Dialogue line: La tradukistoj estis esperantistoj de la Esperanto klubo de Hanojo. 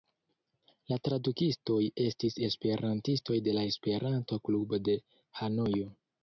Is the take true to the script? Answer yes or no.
yes